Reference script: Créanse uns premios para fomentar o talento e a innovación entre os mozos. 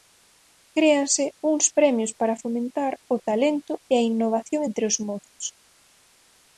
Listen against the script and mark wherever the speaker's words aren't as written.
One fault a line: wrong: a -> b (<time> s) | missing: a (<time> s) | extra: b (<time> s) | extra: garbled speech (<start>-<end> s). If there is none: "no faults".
no faults